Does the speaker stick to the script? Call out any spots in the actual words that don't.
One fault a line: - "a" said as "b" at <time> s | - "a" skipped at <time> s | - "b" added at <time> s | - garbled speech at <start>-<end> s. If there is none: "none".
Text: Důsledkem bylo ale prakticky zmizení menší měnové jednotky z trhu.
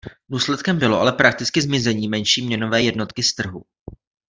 none